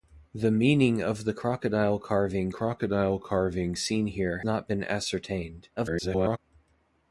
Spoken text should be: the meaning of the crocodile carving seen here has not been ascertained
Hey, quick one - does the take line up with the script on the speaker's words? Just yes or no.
no